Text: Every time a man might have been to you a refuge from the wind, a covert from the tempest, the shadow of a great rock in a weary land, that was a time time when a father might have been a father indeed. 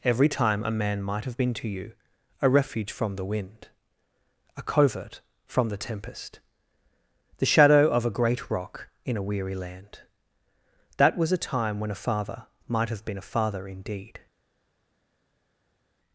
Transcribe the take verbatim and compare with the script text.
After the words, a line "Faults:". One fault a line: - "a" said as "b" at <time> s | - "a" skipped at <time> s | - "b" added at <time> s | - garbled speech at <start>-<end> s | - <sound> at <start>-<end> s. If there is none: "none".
Every time a man might have been to you a refuge from the wind, a covert from the tempest, the shadow of a great rock in a weary land, that was a time when a father might have been a father indeed.
Faults:
- "time" skipped at 11.8 s